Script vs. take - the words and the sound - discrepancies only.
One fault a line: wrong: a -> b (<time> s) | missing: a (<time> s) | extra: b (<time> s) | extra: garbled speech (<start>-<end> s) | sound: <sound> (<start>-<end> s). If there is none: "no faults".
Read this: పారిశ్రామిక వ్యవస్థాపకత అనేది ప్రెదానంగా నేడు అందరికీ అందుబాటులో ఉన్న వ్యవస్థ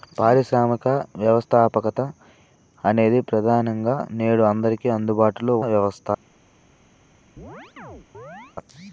missing: ఉన్న (5.5 s)
sound: chirp (7.4-8.6 s)